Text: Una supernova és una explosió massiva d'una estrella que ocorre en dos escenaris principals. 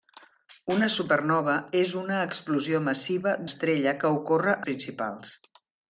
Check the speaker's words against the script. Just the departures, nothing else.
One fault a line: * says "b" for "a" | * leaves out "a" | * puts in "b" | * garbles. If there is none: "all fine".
* leaves out "d'una"
* leaves out "en dos escenaris"